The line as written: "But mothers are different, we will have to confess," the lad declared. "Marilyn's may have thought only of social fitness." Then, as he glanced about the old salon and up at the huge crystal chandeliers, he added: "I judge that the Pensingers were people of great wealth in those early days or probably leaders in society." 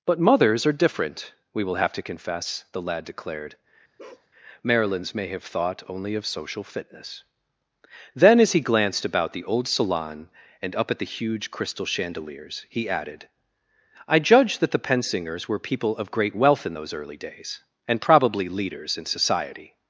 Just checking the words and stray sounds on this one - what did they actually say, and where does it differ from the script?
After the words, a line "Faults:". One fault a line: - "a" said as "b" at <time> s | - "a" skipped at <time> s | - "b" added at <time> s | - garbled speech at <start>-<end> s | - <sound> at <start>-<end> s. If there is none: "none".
"But mothers are different, we will have to confess," the lad declared. "Marilyn's may have thought only of social fitness." Then, as he glanced about the old salon and up at the huge crystal chandeliers, he added: "I judge that the Pensingers were people of great wealth in those early days and probably leaders in society."
Faults:
- bark at 4.0-4.3 s
- "or" said as "and" at 17.9 s